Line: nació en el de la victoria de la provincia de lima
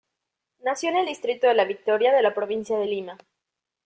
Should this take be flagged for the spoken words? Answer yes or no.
yes